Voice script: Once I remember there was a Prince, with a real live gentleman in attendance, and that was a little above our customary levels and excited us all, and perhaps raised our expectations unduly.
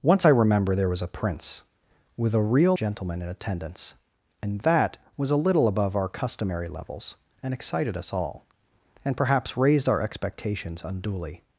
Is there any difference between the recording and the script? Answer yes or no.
yes